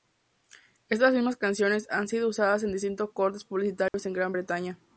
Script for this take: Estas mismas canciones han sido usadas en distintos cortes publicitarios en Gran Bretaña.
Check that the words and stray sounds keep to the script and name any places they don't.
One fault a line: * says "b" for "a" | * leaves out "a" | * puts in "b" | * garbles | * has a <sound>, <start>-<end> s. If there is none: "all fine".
* has a dropout, 3.9-3.9 s